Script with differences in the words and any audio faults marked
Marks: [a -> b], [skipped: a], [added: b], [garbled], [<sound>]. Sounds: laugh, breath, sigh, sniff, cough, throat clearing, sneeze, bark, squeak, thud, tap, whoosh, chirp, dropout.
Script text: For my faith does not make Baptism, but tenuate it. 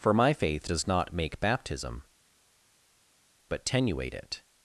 For my faith does not make Baptism, but tenuate it.